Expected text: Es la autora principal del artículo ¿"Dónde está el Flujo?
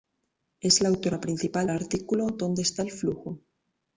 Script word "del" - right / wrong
wrong